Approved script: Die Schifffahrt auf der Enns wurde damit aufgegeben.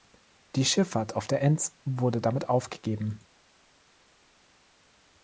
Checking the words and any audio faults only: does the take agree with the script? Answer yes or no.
yes